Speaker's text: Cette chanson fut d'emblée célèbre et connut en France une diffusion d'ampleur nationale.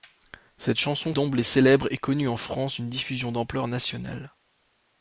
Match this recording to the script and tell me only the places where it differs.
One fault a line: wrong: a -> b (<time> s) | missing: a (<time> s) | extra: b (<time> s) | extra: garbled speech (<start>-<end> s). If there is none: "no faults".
missing: fut (1.1 s)